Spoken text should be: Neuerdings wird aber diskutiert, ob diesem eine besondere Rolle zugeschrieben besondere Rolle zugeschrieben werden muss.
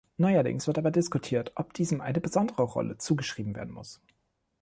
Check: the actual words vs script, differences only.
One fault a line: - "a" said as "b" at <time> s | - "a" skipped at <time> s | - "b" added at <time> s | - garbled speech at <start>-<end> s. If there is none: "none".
- "besondere Rolle zugeschrieben" skipped at 3.5 s